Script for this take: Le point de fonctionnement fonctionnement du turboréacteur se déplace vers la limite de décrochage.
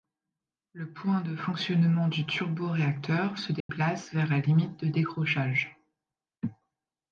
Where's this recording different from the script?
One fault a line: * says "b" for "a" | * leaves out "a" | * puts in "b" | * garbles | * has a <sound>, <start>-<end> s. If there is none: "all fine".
* leaves out "fonctionnement"
* has a dropout, 3.6-3.7 s